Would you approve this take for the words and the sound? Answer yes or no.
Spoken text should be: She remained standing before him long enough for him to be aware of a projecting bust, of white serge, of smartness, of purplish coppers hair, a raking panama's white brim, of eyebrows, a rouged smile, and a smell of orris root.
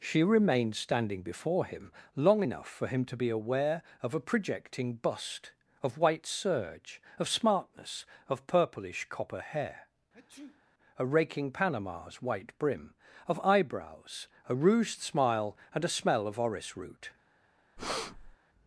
no